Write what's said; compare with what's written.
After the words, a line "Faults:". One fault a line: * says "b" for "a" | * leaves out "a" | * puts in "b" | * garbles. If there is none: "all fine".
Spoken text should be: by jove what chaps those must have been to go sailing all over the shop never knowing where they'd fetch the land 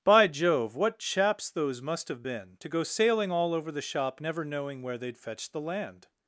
by jove what chaps those must have been to go sailing all over the shop never knowing where they'd fetch the land
Faults:
all fine